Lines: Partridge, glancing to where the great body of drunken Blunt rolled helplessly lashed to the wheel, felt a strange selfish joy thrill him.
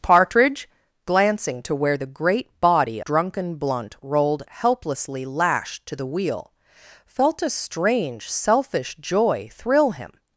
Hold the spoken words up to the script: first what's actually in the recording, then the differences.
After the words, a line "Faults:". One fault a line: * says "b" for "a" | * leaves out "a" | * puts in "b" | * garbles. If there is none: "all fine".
Partridge, glancing to where the great body drunken Blunt rolled helplessly lashed to the wheel, felt a strange selfish joy thrill him.
Faults:
* leaves out "of"